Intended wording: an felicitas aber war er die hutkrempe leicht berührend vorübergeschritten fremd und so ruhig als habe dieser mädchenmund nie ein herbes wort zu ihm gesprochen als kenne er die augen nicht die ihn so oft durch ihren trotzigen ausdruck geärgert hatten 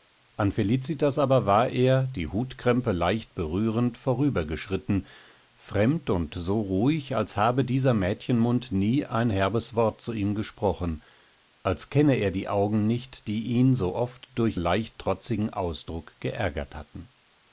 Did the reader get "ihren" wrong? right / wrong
wrong